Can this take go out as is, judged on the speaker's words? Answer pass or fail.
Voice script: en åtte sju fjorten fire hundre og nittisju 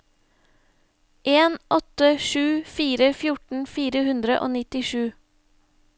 fail